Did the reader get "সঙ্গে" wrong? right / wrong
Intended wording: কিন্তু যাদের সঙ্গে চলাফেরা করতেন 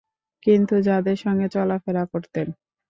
right